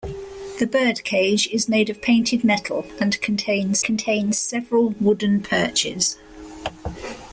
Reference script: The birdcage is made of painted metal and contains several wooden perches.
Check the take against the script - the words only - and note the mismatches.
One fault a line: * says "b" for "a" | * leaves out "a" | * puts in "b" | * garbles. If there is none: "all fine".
* puts in "contains"